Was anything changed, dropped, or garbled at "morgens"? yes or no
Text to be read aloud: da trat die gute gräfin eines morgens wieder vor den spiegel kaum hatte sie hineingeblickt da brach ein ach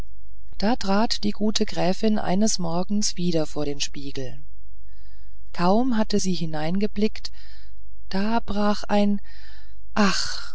no